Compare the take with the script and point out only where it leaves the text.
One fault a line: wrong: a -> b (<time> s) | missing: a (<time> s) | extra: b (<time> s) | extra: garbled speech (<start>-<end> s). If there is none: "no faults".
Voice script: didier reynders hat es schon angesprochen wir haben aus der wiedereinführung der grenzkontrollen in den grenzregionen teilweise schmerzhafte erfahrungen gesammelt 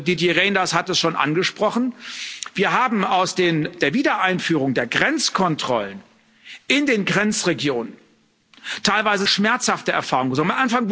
no faults